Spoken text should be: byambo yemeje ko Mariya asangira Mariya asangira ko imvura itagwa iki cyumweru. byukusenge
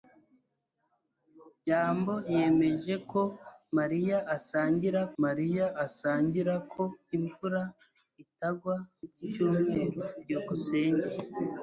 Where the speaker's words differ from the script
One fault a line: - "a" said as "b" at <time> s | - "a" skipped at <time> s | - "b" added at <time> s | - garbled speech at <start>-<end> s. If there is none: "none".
none